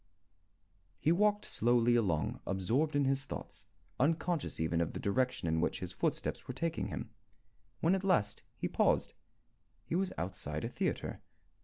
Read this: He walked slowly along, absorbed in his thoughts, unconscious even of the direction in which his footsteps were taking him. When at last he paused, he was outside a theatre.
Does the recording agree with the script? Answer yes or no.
yes